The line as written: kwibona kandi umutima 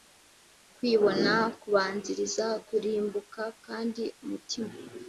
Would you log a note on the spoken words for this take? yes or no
yes